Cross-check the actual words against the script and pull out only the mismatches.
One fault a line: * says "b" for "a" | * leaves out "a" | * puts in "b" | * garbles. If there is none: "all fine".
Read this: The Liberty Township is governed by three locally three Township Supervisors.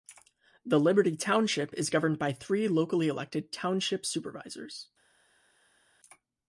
* says "elected" for "three"